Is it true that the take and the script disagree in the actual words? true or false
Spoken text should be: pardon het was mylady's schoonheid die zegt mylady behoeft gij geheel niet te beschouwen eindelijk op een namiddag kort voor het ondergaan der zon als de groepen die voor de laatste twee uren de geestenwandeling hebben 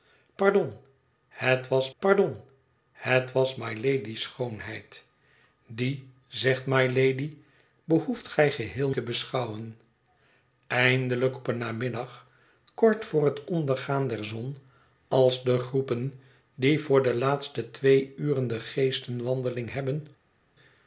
true